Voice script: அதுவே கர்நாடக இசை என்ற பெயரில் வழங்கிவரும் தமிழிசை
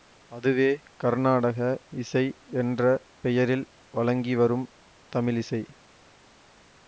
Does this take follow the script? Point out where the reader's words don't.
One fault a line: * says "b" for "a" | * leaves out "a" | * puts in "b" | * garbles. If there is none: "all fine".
all fine